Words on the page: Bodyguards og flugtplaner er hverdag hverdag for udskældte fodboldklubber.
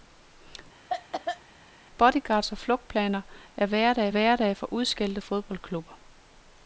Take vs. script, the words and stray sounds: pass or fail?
fail